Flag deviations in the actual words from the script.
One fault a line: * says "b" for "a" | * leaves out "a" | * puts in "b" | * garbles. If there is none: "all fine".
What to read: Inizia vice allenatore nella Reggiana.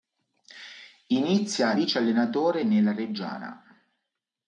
all fine